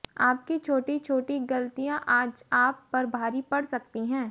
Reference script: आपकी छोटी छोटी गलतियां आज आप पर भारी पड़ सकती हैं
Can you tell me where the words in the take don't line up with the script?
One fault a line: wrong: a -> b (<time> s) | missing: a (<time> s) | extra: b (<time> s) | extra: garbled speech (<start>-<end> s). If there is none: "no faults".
no faults